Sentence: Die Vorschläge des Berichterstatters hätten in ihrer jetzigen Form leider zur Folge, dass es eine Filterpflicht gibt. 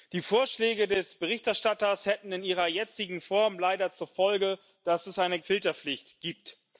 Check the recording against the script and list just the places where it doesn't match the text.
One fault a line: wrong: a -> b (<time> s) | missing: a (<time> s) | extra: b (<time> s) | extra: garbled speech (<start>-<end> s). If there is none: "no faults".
no faults